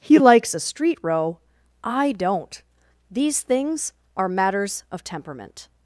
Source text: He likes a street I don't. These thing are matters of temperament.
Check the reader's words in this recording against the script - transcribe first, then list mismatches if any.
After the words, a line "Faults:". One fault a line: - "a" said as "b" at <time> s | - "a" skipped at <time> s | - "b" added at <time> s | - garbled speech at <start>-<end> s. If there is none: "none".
He likes a street row, I don't. These things are matters of temperament.
Faults:
- "row" added at 1.0 s
- "thing" said as "things" at 3.4 s